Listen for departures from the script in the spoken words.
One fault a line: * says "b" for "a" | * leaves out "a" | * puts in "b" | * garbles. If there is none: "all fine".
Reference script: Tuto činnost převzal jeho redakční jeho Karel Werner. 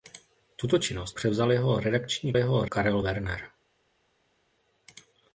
all fine